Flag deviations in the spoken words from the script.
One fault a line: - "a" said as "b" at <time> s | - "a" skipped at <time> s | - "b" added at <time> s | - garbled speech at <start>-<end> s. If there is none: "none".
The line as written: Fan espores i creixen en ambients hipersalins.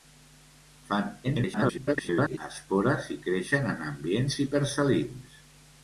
- garbled speech at 1.2-2.4 s